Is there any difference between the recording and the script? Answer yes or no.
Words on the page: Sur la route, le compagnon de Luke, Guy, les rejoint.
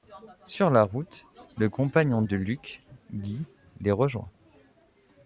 no